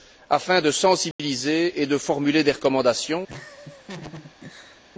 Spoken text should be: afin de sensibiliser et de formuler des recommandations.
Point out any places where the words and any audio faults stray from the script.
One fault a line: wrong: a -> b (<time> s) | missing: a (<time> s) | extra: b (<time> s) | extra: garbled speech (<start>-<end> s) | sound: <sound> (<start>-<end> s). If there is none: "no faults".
sound: dropout (1.1-1.2 s)
sound: laugh (3.3-4.8 s)